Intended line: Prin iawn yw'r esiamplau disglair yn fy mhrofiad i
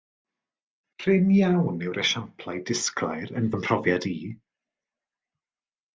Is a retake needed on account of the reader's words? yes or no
no